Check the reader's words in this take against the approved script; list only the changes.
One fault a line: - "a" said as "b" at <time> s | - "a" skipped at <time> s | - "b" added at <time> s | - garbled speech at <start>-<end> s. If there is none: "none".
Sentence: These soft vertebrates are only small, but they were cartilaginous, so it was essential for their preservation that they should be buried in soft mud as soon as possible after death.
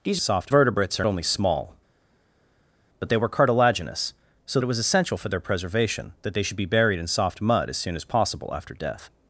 none